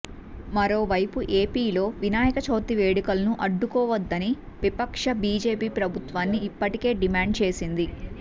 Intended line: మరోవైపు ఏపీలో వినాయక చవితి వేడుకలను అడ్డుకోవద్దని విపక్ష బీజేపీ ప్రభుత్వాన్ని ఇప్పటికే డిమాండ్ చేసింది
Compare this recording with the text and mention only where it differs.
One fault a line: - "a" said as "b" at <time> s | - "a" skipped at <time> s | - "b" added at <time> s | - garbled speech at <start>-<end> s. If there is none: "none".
none